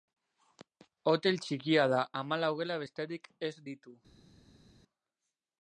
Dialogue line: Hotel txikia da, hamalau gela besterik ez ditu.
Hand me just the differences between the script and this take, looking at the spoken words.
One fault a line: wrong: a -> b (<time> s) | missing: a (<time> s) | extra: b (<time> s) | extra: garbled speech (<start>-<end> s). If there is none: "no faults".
no faults